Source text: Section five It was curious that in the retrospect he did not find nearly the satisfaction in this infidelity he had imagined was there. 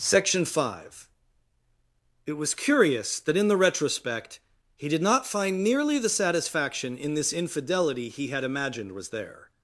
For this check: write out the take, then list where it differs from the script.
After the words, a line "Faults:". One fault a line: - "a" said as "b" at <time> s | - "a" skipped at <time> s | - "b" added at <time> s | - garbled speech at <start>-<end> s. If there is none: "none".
Section five It was curious that in the retrospect he did not find nearly the satisfaction in this infidelity he had imagined was there.
Faults:
none